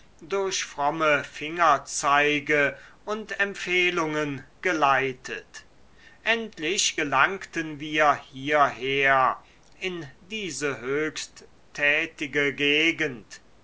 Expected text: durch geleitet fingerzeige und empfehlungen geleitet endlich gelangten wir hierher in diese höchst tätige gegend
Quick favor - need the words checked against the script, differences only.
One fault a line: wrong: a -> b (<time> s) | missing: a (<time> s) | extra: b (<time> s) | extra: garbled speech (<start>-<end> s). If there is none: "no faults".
wrong: geleitet -> fromme (0.6 s)